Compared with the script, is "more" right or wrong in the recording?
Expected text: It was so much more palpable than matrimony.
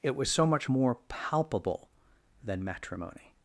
right